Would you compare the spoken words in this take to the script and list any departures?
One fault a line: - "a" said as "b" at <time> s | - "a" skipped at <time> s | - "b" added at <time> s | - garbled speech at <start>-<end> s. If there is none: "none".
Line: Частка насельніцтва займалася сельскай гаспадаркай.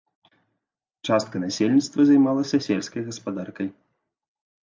none